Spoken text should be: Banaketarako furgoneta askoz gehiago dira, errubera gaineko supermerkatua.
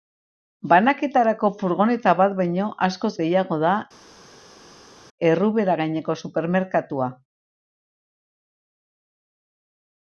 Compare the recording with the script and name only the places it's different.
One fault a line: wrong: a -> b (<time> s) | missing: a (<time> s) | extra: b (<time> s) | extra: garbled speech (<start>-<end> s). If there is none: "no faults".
extra: bat baino (2.2 s)
wrong: dira -> da (3.6 s)